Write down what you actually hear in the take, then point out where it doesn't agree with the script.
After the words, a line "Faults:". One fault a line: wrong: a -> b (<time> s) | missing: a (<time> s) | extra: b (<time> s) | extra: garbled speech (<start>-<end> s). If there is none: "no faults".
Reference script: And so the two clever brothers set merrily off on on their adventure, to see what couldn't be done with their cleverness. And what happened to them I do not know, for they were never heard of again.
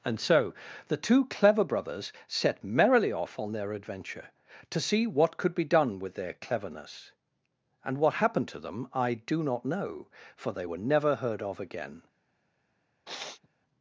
And so the two clever brothers set merrily off on their adventure, to see what could be done with their cleverness. And what happened to them I do not know, for they were never heard of again.
Faults:
missing: on (3.5 s)
wrong: couldn't -> could (5.4 s)